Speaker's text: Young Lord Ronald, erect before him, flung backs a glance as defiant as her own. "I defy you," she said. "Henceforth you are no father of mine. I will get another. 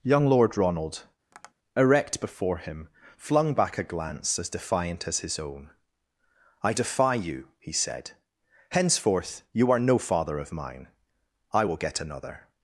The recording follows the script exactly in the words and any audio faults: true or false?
false